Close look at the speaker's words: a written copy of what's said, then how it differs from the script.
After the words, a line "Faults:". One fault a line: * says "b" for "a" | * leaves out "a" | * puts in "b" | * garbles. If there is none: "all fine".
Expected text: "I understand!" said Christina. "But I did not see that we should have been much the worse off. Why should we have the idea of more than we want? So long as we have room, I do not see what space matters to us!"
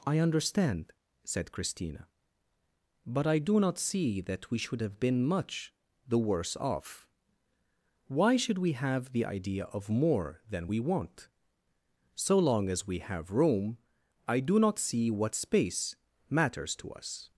"I understand!" said Christina. "But I do not see that we should have been much the worse off. Why should we have the idea of more than we want? So long as we have room, I do not see what space matters to us!"
Faults:
* says "do" for "did"